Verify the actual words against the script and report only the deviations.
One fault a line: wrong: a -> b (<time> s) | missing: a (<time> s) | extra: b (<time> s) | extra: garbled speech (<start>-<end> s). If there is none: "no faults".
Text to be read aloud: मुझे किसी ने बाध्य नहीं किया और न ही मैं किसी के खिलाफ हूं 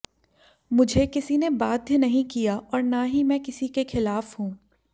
no faults